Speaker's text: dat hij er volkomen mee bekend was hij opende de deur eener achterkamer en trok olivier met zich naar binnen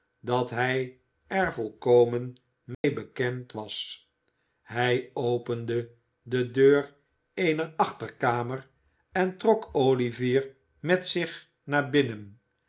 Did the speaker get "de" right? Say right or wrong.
right